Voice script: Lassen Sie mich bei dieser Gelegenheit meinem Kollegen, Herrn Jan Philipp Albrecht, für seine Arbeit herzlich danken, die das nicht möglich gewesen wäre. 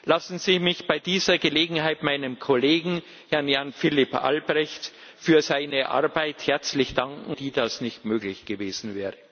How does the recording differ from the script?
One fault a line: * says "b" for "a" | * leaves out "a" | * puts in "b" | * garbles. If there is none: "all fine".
all fine